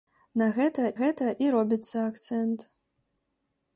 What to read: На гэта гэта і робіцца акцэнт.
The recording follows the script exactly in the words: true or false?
true